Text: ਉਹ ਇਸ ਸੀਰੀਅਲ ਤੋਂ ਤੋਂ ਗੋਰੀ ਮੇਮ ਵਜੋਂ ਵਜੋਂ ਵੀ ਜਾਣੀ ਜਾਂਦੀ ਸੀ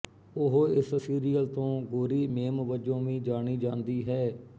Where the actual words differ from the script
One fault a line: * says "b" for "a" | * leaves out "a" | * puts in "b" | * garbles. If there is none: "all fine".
* leaves out "ਤੋਂ"
* leaves out "ਵਜੋਂ"
* says "ਹੈ" for "ਸੀ"